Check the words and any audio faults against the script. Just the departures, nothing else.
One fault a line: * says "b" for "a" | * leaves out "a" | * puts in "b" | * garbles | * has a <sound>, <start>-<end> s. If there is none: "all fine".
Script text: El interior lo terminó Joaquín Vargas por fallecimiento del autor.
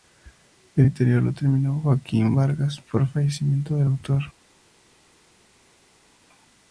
all fine